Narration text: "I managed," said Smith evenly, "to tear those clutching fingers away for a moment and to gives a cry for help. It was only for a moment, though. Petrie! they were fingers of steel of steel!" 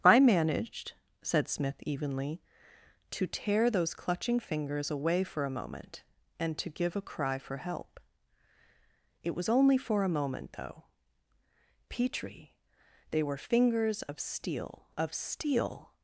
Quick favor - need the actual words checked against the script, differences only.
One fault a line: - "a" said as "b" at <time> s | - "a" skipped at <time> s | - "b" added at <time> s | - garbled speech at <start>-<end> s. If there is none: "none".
- "gives" said as "give" at 6.7 s